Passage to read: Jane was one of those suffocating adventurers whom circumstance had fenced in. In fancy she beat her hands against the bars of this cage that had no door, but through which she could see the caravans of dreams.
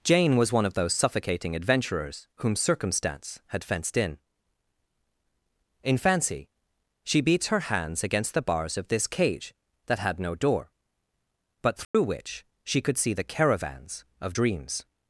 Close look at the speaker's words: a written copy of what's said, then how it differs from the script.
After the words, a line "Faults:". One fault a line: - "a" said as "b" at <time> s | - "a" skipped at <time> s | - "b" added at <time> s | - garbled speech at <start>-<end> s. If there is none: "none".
Jane was one of those suffocating adventurers whom circumstance had fenced in. In fancy she beats her hands against the bars of this cage that had no door, but through which she could see the caravans of dreams.
Faults:
- "beat" said as "beats" at 7.2 s